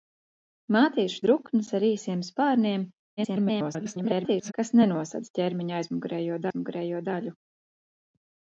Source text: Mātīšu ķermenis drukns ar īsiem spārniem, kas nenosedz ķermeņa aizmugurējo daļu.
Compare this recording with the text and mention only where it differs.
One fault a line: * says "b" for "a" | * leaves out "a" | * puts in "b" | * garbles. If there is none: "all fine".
* leaves out "ķermenis"
* garbles
* puts in "aizmugurējo"